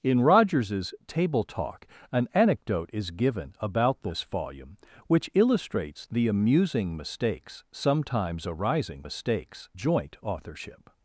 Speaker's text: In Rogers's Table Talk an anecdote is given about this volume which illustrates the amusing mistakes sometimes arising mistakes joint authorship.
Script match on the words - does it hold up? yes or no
yes